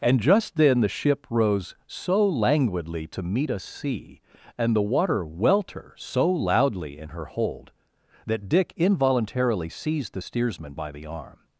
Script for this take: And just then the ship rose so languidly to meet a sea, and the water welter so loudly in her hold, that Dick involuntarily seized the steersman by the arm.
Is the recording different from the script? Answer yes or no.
no